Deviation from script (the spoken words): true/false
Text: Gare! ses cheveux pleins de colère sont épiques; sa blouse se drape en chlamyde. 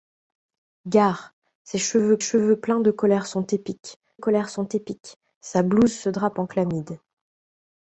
true